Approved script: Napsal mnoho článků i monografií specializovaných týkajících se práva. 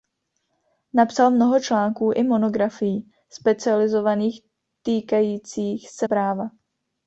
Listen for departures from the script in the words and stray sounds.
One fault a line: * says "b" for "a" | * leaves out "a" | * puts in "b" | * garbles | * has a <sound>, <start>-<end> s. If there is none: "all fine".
all fine